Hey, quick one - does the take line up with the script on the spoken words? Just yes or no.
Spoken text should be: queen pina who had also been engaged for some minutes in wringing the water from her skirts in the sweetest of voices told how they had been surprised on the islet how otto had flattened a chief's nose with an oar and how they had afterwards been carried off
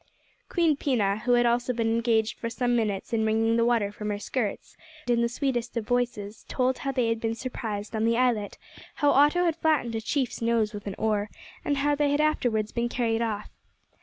yes